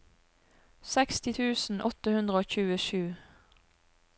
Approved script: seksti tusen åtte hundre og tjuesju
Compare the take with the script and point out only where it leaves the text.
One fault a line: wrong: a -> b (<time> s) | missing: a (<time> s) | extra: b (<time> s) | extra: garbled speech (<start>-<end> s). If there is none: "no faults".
no faults